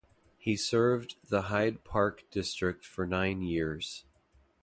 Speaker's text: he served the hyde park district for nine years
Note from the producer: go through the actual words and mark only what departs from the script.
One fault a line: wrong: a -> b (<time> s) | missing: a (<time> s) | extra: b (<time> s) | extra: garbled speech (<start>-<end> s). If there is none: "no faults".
no faults